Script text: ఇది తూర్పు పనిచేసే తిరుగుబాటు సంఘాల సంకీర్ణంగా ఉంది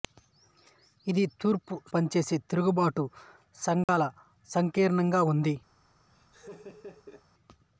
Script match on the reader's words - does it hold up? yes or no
yes